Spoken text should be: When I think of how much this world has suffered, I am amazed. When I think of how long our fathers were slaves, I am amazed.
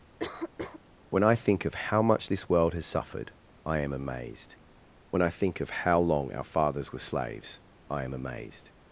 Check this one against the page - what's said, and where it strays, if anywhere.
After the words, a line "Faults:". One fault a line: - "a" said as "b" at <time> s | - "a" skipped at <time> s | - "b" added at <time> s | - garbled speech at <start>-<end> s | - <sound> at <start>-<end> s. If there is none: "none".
When I think of how much this world has suffered, I am amazed. When I think of how long our fathers were slaves, I am amazed.
Faults:
- cough at 0.2-0.8 s